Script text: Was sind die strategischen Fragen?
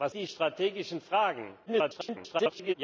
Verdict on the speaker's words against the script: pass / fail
fail